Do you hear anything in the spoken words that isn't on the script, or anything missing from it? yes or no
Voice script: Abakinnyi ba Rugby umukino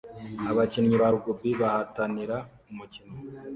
yes